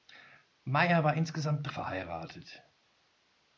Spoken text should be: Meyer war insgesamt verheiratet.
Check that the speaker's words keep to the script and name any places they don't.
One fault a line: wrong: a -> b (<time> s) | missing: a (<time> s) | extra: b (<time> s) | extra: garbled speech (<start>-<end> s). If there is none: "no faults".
no faults